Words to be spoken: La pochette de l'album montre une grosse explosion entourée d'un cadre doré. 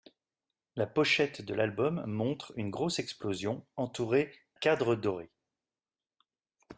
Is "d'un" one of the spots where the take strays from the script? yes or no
yes